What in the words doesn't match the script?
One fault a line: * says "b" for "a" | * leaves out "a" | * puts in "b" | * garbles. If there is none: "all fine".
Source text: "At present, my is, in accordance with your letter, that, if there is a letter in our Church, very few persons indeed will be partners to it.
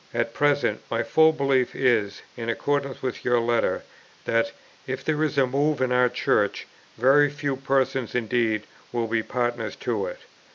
* puts in "full belief"
* says "move" for "letter"